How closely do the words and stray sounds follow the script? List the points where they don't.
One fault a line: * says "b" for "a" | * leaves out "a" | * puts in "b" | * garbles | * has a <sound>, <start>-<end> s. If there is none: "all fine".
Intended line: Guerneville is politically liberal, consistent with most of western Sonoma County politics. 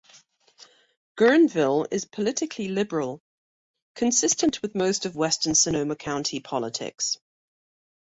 all fine